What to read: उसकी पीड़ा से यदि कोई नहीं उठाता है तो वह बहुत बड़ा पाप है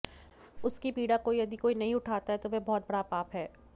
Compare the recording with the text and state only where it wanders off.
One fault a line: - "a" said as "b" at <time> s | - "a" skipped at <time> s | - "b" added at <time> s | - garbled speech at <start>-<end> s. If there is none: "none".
- "से" said as "को" at 1.2 s